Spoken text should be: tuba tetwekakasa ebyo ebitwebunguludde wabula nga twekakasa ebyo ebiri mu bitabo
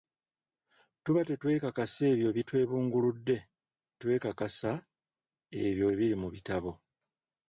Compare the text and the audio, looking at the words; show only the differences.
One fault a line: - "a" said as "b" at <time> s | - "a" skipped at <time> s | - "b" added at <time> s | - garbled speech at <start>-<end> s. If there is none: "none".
- "wabula nga" skipped at 3.4 s